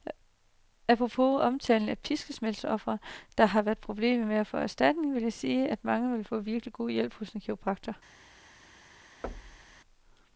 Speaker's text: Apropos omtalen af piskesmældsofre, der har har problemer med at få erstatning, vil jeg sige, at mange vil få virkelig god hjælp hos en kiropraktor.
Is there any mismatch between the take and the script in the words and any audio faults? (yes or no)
yes